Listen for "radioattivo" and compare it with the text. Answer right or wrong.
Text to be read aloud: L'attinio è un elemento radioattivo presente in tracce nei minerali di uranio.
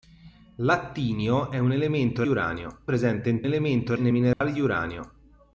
wrong